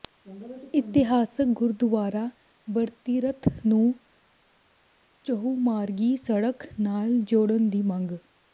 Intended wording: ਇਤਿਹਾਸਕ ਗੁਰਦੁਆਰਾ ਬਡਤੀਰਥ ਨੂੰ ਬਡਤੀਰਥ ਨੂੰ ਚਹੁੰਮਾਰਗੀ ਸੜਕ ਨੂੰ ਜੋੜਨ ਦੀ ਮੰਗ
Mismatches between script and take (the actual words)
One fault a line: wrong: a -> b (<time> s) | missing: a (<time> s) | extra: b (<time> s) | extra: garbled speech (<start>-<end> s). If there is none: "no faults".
missing: ਬਡਤੀਰਥ ਨੂੰ (3.9 s)
wrong: ਨੂੰ -> ਨਾਲ (6.8 s)